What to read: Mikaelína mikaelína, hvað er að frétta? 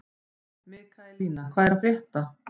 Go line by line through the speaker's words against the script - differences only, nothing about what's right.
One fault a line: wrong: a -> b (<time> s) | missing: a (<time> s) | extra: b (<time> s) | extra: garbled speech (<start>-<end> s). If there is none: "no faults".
missing: mikaelína (1.5 s)